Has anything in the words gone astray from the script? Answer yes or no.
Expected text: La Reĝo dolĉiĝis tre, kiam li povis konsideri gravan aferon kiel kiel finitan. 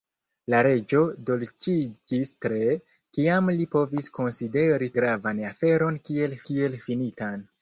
no